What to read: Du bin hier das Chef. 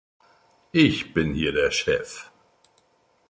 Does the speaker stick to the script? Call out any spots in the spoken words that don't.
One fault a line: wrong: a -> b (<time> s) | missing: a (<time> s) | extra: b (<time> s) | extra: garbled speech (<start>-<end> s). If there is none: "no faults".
wrong: Du -> Ich (0.7 s)
wrong: das -> der (1.5 s)